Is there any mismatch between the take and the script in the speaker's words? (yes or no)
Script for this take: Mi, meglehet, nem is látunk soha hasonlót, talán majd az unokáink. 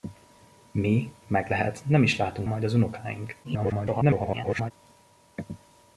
yes